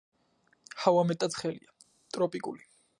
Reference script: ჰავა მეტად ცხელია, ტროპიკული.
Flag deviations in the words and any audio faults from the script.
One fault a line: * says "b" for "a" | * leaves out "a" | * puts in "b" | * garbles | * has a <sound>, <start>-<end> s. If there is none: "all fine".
all fine